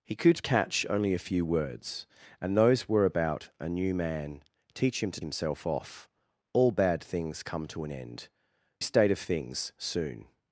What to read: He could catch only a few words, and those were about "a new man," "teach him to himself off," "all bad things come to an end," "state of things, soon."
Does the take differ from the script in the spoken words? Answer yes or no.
no